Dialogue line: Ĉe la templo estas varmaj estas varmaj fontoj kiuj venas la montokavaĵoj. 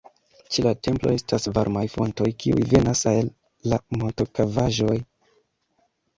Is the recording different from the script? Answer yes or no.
yes